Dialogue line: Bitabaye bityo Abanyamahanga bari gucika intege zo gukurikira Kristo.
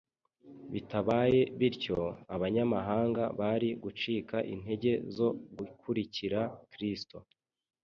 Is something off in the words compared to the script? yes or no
no